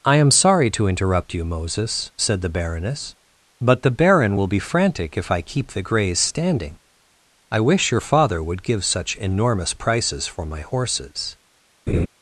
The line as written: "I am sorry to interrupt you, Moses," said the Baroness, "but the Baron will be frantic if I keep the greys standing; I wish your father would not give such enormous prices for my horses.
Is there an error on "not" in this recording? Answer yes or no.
yes